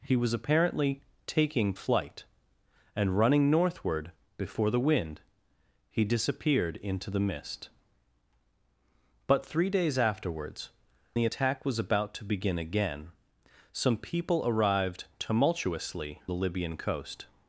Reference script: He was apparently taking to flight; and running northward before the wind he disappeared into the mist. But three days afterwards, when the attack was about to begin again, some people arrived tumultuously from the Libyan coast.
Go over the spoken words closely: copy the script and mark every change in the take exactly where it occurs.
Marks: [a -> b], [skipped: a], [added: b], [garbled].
He was apparently taking [skipped: to] flight; and running northward before the wind he disappeared into the mist. But three days afterwards, [skipped: when] the attack was about to begin again, some people arrived tumultuously [skipped: from] the Libyan coast.